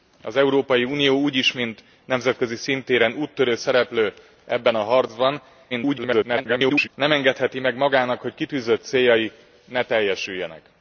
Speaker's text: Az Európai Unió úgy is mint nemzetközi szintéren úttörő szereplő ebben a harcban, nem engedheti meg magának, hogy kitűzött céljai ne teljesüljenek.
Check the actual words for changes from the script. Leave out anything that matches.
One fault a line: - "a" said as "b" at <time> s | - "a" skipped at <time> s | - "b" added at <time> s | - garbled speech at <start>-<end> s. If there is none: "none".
- garbled speech at 5.7-6.9 s